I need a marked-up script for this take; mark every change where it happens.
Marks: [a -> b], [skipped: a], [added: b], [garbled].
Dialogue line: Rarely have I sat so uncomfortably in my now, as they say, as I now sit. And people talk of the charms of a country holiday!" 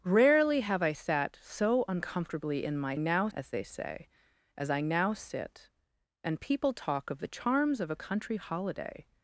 Rarely have I sat so uncomfortably in my now, as they say, as I now sit. And people talk of the charms of a country holiday!"